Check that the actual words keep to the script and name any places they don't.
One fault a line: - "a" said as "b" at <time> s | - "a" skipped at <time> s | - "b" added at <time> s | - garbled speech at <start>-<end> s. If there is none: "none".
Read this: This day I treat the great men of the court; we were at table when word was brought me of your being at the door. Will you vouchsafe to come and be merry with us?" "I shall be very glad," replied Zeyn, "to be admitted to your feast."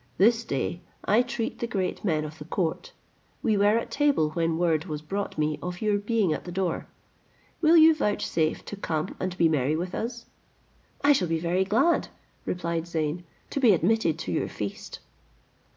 none